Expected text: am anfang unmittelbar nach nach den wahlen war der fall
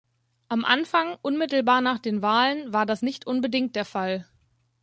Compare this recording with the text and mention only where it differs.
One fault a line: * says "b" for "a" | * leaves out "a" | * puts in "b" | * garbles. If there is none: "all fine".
* leaves out "nach"
* puts in "das nicht unbedingt"